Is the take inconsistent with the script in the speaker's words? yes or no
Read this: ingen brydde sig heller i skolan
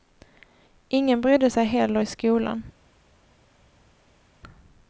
no